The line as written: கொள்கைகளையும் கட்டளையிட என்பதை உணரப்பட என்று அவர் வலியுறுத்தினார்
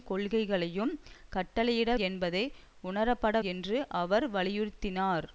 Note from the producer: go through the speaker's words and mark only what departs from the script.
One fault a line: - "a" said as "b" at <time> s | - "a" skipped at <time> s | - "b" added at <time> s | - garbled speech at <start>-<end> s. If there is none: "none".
none